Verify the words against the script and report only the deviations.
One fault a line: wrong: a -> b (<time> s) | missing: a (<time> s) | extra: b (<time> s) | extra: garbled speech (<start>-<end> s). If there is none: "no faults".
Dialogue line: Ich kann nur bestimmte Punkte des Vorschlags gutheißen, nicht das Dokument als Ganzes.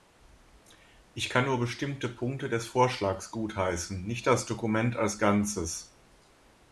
no faults